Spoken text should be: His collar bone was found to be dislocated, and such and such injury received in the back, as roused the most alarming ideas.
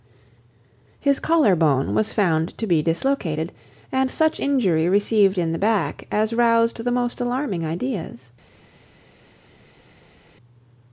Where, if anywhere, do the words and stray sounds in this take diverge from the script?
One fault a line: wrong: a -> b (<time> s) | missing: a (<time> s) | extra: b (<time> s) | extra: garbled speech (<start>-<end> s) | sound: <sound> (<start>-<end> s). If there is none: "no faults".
missing: and such (4.4 s)